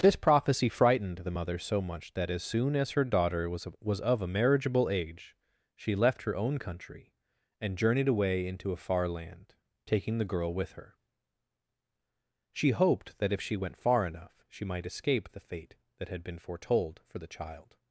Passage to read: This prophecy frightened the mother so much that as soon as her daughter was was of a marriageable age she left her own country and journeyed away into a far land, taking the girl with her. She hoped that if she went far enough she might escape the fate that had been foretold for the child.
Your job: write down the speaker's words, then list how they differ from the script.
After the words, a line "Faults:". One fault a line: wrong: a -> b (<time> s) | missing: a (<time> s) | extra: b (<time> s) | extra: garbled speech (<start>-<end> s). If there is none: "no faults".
This prophecy frightened the mother so much that as soon as her daughter was was of a marriageable age she left her own country and journeyed away into a far land, taking the girl with her. She hoped that if she went far enough she might escape the fate that had been foretold for the child.
Faults:
no faults